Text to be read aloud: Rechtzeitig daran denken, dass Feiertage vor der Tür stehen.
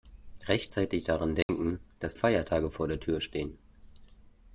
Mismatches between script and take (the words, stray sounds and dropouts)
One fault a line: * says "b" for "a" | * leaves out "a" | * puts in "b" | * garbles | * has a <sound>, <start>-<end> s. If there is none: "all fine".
* has a dropout, 1.4-1.5 s